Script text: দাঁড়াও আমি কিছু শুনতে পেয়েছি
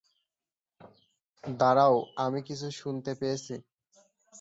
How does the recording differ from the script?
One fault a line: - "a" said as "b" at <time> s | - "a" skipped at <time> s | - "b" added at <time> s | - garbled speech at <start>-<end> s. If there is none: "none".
none